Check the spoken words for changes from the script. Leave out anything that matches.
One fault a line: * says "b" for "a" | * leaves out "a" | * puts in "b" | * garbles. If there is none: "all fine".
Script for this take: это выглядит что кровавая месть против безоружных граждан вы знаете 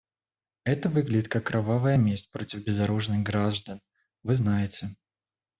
* says "как" for "что"